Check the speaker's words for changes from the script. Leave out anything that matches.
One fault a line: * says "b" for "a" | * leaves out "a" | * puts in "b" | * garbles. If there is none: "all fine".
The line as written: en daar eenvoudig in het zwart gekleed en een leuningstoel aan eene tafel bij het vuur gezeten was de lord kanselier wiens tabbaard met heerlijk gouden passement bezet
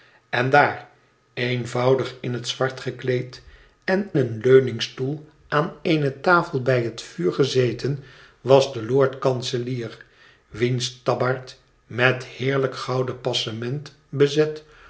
all fine